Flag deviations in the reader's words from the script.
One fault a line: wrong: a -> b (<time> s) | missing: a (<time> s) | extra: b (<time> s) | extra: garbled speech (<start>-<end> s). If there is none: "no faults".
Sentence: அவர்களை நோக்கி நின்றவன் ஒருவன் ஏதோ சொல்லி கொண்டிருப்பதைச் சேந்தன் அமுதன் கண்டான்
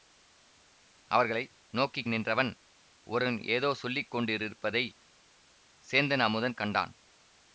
no faults